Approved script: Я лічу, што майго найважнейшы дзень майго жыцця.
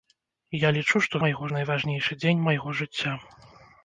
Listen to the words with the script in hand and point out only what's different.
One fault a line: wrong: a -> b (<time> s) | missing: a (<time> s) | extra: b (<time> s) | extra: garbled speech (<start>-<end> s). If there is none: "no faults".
no faults